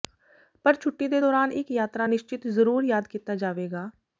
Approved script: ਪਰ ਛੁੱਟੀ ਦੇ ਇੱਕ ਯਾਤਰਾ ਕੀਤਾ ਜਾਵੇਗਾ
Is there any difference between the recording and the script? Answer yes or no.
yes